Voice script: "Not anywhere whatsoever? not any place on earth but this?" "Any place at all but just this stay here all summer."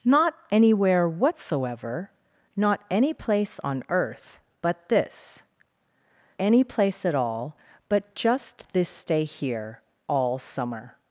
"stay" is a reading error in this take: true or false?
false